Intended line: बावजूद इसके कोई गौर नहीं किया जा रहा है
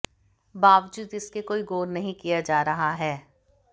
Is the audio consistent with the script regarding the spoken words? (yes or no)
yes